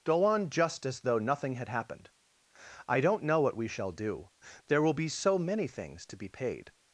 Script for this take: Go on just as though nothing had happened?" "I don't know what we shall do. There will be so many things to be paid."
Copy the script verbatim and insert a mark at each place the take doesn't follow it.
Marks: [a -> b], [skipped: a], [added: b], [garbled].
Go on just as though nothing had happened?" "I don't know what we shall do. There will be so many things to be paid."